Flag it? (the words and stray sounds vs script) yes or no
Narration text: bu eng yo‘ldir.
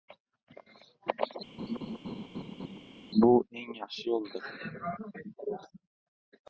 yes